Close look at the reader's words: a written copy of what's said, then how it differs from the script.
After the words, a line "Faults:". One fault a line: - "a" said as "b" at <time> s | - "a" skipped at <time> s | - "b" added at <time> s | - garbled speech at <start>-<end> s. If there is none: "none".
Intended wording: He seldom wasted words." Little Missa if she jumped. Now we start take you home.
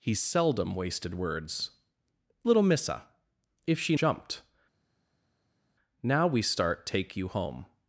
He seldom wasted words." Little Missa if she jumped. Now we start take you home.
Faults:
none